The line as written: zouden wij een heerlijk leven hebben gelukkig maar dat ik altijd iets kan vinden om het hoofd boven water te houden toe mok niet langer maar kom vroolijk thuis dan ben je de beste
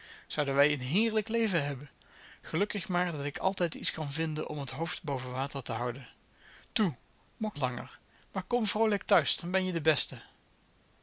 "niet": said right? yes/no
no